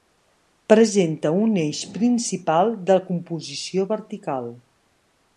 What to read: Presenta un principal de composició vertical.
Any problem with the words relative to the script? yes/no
yes